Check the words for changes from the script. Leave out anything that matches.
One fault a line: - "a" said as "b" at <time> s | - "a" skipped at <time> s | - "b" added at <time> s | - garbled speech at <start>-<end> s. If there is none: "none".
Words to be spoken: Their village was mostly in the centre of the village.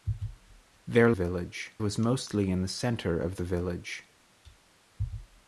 none